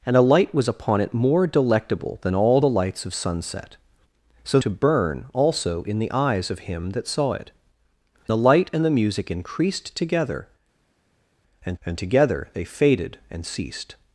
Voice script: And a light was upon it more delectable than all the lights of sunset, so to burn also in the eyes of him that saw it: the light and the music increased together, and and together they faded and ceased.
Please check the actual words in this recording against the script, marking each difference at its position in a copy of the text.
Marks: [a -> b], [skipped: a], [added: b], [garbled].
And a light was upon it more delectable than all the lights of sunset, so to burn also in the eyes of him that saw it: the light and the music increased together, and and together they faded and ceased.